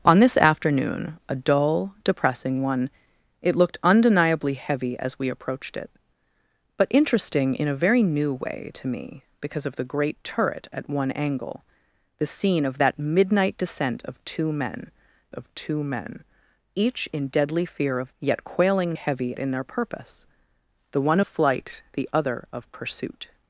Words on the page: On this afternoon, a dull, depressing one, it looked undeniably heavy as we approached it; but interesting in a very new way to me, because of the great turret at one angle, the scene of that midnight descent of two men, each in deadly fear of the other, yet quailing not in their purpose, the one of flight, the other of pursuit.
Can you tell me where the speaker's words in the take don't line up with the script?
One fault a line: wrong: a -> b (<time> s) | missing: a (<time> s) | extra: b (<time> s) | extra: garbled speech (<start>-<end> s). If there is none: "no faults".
extra: of two men (15.3 s)
missing: the other (18.1 s)
wrong: not -> heavy (18.9 s)